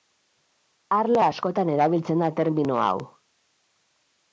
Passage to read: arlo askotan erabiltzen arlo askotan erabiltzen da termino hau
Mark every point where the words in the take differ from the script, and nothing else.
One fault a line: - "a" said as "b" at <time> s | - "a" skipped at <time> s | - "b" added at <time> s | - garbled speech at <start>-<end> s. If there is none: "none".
- "arlo askotan erabiltzen" skipped at 2.3 s